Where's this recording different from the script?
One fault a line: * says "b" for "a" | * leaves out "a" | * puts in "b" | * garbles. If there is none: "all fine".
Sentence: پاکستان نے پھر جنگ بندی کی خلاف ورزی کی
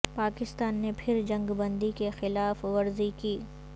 all fine